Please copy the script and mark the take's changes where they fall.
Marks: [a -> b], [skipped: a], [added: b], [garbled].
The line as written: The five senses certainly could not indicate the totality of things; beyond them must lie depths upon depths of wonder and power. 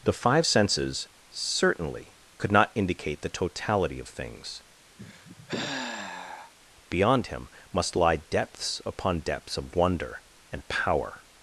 The five senses certainly could not indicate the totality of things; beyond [them -> him] must lie depths upon depths of wonder and power.